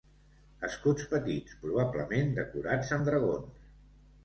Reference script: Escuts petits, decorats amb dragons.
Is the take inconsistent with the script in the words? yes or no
yes